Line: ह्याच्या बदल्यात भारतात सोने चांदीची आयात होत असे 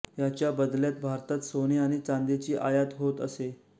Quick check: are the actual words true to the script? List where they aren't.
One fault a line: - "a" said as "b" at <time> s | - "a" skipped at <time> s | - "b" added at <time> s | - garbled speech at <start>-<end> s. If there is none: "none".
- "आणि" added at 1.8 s